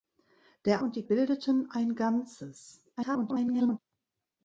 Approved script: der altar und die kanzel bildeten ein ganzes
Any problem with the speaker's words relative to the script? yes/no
yes